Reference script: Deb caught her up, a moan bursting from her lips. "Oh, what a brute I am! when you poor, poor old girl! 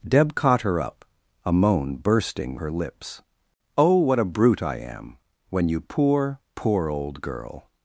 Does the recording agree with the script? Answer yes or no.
no